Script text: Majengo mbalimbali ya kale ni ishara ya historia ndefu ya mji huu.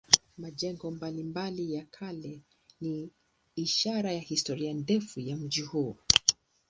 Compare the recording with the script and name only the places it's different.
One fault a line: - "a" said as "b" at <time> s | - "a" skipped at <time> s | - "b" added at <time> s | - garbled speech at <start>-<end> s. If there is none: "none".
none